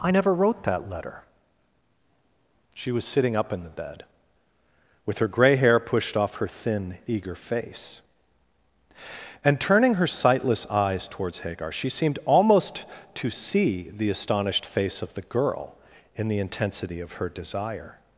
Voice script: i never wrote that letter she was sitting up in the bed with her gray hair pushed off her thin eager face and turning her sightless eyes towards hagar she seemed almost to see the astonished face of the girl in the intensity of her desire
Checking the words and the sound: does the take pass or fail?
pass